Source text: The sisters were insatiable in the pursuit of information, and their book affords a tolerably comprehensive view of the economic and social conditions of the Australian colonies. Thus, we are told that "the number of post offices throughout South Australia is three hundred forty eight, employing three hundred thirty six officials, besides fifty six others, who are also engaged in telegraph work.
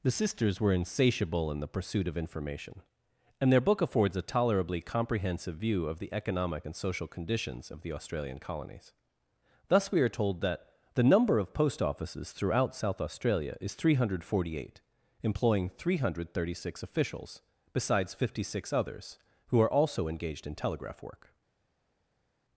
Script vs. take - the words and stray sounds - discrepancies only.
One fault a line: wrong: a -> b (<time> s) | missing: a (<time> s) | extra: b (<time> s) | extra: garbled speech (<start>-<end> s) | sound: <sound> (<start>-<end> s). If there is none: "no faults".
no faults